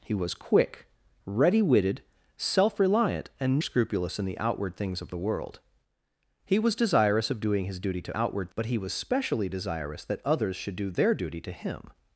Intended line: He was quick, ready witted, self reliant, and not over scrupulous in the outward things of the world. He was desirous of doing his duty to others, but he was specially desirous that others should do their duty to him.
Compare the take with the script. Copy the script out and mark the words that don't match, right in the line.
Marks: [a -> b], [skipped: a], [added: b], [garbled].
He was quick, ready witted, self reliant, and [skipped: not over] scrupulous in the outward things of the world. He was desirous of doing his duty to [others, -> outward] but he was specially desirous that others should do their duty to him.